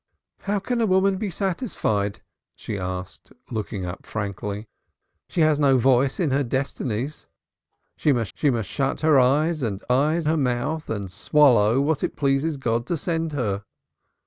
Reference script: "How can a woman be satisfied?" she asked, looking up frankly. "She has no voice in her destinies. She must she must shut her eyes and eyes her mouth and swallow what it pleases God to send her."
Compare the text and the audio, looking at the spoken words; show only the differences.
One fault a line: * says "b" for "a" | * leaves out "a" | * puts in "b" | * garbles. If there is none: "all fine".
all fine